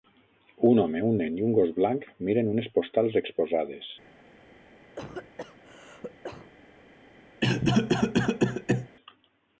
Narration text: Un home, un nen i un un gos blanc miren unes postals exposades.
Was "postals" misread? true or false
false